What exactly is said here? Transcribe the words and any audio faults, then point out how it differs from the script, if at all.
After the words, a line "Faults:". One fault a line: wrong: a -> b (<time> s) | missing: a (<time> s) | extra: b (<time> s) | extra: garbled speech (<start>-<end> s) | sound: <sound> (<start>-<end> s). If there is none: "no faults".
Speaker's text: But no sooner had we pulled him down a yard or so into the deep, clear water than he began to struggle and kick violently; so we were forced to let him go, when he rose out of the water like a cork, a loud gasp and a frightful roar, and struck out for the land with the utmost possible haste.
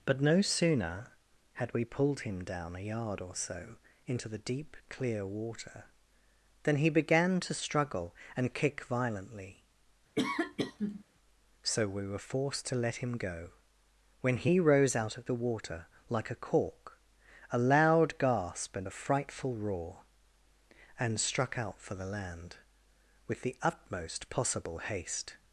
But no sooner had we pulled him down a yard or so into the deep, clear water than he began to struggle and kick violently; so we were forced to let him go, when he rose out of the water like a cork, a loud gasp and a frightful roar, and struck out for the land with the utmost possible haste.
Faults:
sound: sneeze (10.2-11.0 s)